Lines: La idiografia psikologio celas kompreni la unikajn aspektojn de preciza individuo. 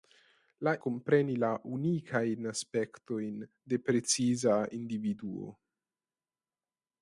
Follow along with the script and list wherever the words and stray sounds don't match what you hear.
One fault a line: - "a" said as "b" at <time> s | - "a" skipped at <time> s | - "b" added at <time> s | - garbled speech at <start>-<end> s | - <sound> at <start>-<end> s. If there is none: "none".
- "idiografia psikologio celas" skipped at 0.7 s